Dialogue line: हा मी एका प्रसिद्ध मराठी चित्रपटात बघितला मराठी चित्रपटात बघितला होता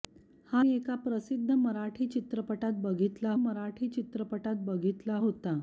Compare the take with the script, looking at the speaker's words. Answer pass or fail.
pass